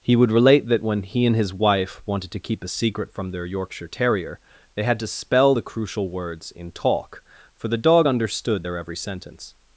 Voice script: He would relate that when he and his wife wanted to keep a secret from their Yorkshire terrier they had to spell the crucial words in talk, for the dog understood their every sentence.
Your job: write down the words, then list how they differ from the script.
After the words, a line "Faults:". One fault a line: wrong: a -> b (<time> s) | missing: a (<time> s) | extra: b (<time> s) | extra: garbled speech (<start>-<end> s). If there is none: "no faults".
He would relate that when he and his wife wanted to keep a secret from their Yorkshire terrier they had to spell the crucial words in talk, for the dog understood their every sentence.
Faults:
no faults